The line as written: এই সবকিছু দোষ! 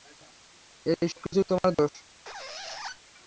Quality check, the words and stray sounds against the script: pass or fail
fail